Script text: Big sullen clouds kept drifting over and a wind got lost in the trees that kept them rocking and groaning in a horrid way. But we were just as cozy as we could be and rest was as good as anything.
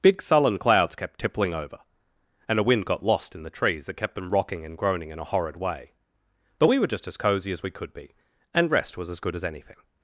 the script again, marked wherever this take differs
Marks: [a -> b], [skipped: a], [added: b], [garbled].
Big sullen clouds kept [drifting -> tippling] over and a wind got lost in the trees that kept them rocking and groaning in a horrid way. But we were just as cozy as we could be and rest was as good as anything.